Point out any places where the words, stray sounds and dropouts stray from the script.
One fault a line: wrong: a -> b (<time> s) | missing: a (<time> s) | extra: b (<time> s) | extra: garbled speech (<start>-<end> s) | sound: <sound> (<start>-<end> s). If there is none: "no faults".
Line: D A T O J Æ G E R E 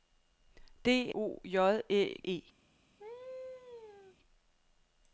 missing: A T (1.1 s)
missing: G E R (2.2 s)
sound: laugh (3.0-4.2 s)